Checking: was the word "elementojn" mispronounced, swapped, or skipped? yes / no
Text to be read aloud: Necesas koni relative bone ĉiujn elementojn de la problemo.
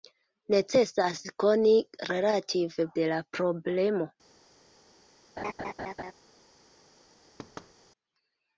yes